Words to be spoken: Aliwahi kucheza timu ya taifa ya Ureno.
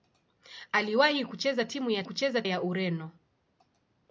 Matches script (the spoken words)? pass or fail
fail